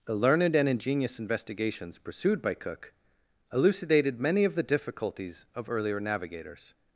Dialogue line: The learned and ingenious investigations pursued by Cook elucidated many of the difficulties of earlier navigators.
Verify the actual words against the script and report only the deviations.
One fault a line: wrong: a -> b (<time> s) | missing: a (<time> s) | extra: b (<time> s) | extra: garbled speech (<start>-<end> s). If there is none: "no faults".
no faults